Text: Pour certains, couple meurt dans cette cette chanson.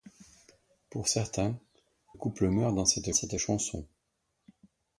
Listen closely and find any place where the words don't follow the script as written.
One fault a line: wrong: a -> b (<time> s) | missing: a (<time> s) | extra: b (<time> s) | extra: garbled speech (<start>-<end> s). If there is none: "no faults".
no faults